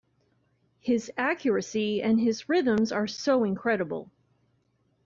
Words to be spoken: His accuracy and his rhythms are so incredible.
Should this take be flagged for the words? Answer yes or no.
no